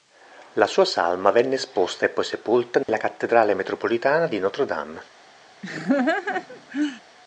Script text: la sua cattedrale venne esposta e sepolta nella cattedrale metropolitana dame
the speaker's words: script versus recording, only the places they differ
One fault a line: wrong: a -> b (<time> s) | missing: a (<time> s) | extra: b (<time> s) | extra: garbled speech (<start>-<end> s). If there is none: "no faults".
wrong: cattedrale -> salma (0.8 s)
extra: poi (2.1 s)
extra: di notre (4.3 s)